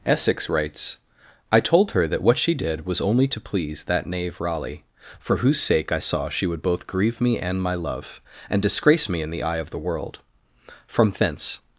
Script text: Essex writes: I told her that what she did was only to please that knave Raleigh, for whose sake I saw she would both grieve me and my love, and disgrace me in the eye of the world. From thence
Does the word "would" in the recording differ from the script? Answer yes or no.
no